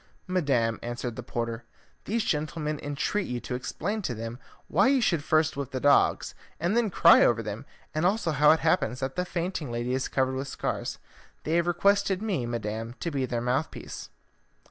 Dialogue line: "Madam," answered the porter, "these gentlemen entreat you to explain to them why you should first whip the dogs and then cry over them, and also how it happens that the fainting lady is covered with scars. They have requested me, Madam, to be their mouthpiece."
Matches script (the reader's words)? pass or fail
pass